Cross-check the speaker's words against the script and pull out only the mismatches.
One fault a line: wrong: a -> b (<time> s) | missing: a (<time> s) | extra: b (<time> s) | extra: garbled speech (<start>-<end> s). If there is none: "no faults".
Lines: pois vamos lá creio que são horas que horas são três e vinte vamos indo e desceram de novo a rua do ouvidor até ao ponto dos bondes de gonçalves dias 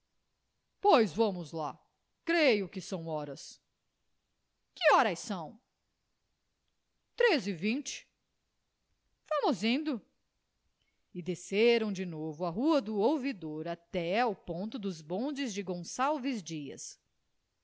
no faults